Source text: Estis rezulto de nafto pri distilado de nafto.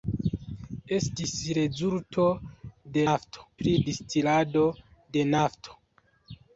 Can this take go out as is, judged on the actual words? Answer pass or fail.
pass